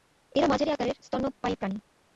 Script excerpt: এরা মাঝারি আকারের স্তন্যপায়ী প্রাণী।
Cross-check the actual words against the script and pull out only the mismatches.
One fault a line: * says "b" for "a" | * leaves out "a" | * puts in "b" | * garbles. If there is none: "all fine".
all fine